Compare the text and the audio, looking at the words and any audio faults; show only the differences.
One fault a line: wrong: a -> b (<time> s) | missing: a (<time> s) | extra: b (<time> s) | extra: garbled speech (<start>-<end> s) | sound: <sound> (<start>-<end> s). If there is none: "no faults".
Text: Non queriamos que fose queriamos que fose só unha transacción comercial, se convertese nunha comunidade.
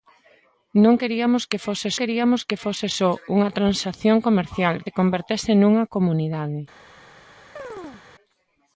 sound: chirp (7.6-8.0 s)